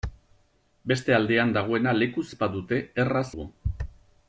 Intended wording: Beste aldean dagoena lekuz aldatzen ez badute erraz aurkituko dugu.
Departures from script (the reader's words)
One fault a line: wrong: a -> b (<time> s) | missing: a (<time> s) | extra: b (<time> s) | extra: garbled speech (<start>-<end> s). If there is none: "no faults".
missing: aldatzen (2.2 s)
missing: aurkituko (3.3 s)